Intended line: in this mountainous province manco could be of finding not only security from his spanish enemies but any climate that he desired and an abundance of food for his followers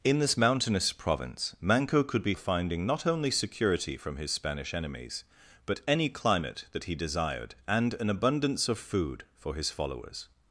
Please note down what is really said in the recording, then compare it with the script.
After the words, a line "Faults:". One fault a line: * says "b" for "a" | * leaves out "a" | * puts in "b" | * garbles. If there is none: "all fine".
in this mountainous province manco could be of finding not only security from his spanish enemies but any climate that he desired and an abundance of food for his followers
Faults:
all fine